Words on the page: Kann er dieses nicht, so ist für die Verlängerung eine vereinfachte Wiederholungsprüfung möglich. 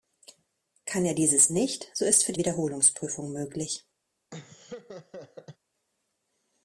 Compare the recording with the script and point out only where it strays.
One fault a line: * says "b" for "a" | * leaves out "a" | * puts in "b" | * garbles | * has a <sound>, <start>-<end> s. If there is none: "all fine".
* leaves out "Verlängerung eine vereinfachte"
* has a laugh, 4.3-5.6 s